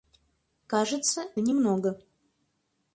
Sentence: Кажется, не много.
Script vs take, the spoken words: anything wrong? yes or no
no